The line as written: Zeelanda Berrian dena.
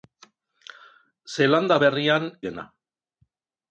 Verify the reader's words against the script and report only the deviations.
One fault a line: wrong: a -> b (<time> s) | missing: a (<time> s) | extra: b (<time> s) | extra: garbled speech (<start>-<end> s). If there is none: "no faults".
no faults